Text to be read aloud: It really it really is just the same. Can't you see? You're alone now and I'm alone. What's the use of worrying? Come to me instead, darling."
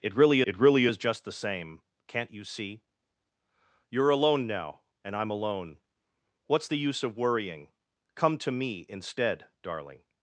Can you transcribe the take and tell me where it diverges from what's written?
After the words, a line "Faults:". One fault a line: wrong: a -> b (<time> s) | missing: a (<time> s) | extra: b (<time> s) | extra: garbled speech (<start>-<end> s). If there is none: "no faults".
It really it really is just the same. Can't you see? You're alone now and I'm alone. What's the use of worrying? Come to me instead, darling."
Faults:
no faults